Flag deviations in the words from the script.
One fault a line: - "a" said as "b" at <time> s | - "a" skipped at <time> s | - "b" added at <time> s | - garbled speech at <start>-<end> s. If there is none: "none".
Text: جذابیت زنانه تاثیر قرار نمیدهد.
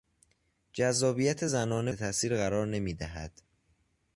none